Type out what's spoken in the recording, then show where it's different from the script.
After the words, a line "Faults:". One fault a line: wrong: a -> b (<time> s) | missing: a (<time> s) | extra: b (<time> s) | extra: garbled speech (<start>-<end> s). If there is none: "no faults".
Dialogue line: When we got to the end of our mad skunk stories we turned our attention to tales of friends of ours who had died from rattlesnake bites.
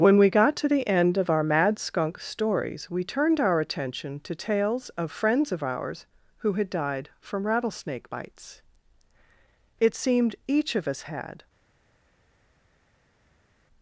When we got to the end of our mad skunk stories we turned our attention to tales of friends of ours who had died from rattlesnake bites. It seemed each of us had
Faults:
extra: It seemed each of us had (9.8 s)